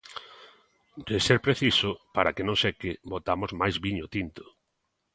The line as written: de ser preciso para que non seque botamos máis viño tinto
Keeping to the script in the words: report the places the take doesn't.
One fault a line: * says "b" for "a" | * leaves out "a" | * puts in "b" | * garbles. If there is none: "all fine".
all fine